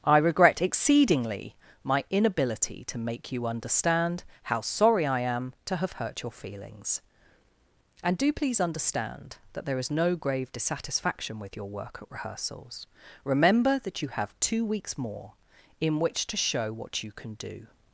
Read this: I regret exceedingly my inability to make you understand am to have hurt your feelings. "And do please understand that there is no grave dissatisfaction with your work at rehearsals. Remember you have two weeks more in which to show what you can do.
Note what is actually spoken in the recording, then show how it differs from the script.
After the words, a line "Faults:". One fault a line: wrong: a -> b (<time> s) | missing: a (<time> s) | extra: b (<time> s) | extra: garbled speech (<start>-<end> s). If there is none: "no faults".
I regret exceedingly my inability to make you understand how sorry I am to have hurt your feelings. "And do please understand that there is no grave dissatisfaction with your work at rehearsals. Remember that you have two weeks more in which to show what you can do.
Faults:
extra: how sorry I (4.4 s)
extra: that (13.8 s)